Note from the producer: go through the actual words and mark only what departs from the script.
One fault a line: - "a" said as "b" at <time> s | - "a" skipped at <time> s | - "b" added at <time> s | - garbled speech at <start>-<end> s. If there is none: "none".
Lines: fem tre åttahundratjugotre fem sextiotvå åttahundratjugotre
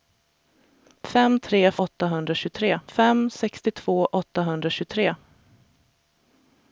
none